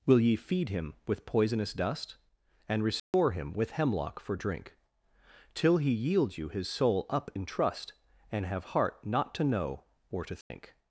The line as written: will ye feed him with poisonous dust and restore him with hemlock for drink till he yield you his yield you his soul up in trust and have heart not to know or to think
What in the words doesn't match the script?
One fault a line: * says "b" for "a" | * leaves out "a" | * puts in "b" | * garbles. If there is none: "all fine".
* leaves out "yield you his"